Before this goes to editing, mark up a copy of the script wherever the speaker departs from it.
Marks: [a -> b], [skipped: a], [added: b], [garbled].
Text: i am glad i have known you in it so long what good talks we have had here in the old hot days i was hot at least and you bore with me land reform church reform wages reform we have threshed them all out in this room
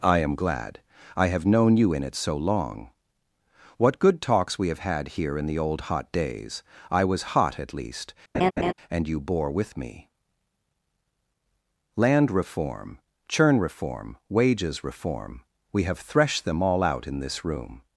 i am glad i have known you in it so long what good talks we have had here in the old hot days i was hot at least and you bore with me land reform [church -> churn] reform wages reform we have threshed them all out in this room